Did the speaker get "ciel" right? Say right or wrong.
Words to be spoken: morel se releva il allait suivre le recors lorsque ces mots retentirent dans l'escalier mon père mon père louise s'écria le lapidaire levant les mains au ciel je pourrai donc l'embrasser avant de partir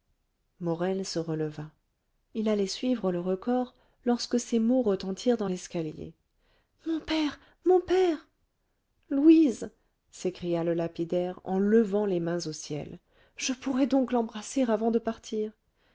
right